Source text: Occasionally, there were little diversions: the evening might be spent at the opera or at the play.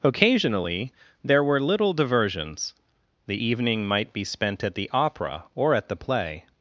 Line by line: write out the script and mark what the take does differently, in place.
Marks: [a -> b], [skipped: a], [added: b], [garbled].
Occasionally, there were little diversions: the evening might be spent at the opera or at the play.